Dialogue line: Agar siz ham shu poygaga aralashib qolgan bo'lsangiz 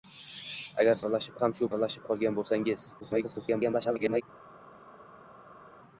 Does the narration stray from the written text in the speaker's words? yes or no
yes